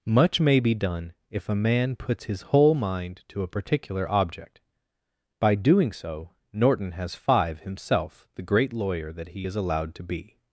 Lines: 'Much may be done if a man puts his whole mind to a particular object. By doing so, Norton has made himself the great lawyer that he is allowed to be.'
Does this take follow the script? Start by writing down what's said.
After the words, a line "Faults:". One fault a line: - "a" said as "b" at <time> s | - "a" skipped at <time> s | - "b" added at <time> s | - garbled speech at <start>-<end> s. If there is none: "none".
'Much may be done if a man puts his whole mind to a particular object. By doing so, Norton has five himself the great lawyer that he is allowed to be.'
Faults:
- "made" said as "five" at 7.1 s